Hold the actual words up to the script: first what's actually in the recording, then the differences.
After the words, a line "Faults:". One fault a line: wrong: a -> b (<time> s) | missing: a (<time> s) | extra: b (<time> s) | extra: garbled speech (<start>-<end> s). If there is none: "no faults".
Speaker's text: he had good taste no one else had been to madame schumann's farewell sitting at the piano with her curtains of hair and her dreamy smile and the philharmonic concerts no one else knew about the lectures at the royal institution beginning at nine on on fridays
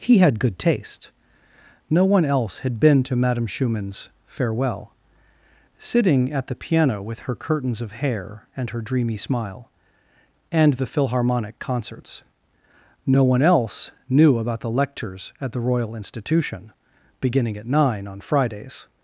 he had good taste no one else had been to madame schumann's farewell sitting at the piano with her curtains of hair and her dreamy smile and the philharmonic concerts no one else knew about the lectures at the royal institution beginning at nine on fridays
Faults:
missing: on (18.2 s)